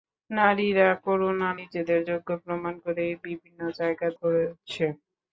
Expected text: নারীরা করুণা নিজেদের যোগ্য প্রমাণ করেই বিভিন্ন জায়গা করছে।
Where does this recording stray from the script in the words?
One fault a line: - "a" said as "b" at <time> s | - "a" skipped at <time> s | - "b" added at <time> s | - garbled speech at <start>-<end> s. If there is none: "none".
none